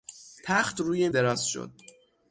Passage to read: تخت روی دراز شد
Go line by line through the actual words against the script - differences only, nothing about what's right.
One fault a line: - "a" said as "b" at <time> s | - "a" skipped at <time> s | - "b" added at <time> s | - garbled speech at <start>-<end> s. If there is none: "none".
none